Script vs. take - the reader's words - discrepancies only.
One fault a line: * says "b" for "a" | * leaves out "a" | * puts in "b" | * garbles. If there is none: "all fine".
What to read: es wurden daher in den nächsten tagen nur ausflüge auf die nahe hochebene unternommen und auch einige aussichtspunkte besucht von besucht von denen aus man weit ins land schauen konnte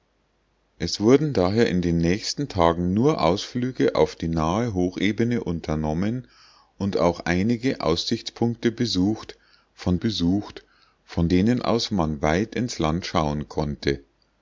all fine